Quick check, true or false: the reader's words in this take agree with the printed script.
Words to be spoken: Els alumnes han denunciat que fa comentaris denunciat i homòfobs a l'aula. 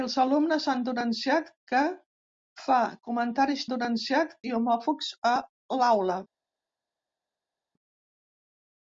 true